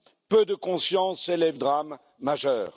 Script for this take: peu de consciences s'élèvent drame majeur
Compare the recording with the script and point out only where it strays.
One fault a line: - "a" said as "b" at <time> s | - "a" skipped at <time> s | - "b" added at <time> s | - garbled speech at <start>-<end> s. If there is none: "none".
none